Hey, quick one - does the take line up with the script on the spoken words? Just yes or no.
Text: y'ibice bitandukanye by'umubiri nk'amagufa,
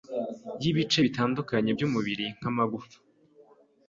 yes